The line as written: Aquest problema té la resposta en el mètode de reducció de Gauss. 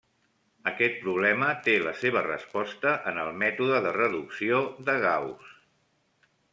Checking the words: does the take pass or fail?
fail